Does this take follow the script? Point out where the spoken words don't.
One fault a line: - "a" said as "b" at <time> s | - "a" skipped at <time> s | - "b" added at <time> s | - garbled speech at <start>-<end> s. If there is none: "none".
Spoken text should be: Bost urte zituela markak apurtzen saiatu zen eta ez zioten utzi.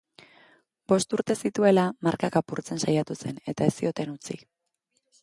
none